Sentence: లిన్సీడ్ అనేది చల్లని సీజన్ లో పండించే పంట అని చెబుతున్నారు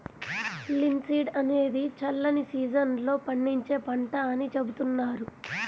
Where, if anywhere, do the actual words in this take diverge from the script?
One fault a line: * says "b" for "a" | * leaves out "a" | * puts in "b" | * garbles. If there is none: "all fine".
all fine